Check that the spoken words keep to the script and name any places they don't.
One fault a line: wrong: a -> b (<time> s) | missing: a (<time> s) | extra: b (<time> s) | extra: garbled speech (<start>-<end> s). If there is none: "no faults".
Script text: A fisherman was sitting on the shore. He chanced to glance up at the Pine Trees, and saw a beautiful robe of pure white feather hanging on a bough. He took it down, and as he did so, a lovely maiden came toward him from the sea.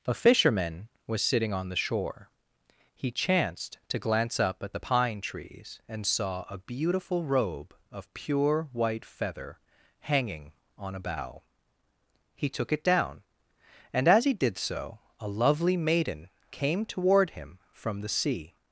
no faults